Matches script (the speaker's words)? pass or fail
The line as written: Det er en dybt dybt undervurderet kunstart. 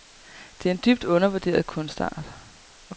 fail